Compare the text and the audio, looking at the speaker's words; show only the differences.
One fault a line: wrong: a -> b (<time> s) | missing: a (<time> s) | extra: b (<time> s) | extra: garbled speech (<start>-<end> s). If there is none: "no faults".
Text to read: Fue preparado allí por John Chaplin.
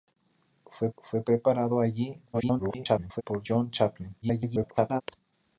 extra: fue (1.0 s)
extra: garbled speech (2.3-3.2 s)
extra: garbled speech (4.2-5.0 s)